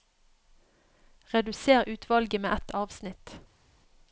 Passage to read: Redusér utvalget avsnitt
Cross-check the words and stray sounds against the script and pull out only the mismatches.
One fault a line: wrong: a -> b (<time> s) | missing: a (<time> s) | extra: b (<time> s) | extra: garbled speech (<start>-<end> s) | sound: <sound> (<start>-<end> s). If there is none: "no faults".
extra: med ett (2.4 s)